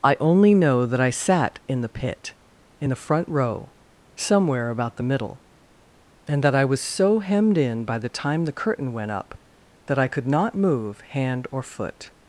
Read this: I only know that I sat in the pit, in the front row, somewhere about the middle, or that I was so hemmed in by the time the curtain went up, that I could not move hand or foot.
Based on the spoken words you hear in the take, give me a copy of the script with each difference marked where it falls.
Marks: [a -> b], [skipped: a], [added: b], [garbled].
I only know that I sat in the pit, in the front row, somewhere about the middle, [or -> and] that I was so hemmed in by the time the curtain went up, that I could not move hand or foot.